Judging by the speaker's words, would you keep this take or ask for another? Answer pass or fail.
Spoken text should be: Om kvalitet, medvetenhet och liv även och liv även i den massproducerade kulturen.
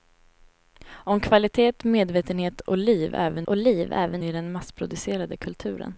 pass